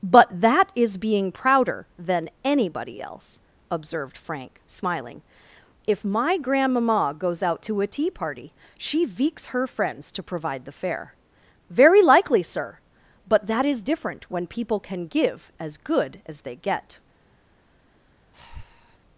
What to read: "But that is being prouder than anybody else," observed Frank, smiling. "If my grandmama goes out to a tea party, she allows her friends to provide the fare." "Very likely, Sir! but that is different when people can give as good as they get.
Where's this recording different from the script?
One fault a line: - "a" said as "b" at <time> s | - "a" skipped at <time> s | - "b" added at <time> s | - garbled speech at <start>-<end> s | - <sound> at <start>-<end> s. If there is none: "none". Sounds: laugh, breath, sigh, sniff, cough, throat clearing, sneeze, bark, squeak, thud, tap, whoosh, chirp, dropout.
- "allows" said as "veeks" at 9.0 s
- breath at 18.3-19.0 s